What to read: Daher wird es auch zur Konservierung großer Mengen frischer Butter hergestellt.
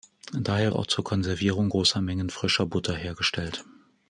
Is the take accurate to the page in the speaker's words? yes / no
no